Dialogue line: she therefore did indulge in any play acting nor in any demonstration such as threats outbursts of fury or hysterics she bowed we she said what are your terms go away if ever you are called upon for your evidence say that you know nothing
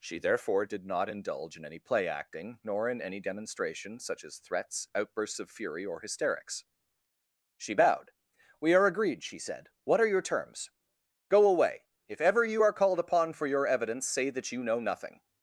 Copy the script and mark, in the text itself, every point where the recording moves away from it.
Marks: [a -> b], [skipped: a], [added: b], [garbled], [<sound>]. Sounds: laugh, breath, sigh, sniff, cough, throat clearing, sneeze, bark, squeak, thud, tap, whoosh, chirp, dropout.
she therefore did [added: not] indulge in any play acting nor in any demonstration such as threats outbursts of fury or hysterics she bowed we [added: are agreed] she said what are your terms go away if ever you are called upon for your evidence say that you know nothing